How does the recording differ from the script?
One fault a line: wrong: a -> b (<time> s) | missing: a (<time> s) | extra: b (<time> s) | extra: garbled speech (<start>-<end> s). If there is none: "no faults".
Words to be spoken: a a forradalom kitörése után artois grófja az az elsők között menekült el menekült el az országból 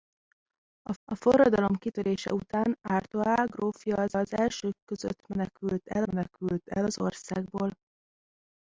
no faults